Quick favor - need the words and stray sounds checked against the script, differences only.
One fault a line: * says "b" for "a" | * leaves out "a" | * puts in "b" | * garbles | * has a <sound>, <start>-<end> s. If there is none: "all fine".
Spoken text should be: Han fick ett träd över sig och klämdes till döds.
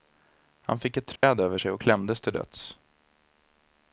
* has a dropout, 1.2-1.2 s